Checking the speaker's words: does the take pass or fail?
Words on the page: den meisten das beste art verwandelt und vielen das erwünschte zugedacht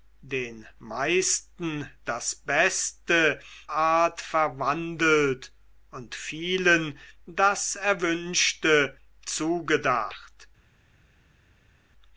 pass